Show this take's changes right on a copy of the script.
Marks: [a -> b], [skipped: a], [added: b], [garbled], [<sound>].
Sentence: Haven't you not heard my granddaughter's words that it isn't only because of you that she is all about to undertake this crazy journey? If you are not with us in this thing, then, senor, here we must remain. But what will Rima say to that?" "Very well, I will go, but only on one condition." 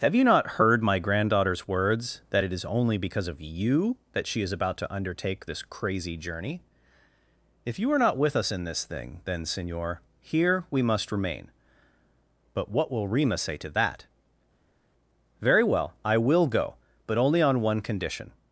[Haven't -> Have] you not heard my granddaughter's words that it [isn't -> is] only because of you that she is [skipped: all] about to undertake this crazy journey? If you are not with us in this thing, then, senor, here we must remain. But what will Rima say to that?" "Very well, I will go, but only on one condition."